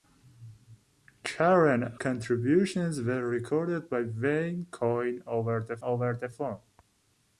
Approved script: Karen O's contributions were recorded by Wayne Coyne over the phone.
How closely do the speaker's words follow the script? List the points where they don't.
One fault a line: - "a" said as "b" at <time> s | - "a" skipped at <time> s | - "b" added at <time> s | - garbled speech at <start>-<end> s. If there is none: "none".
- "O's" skipped at 1.9 s
- "over the" added at 5.8 s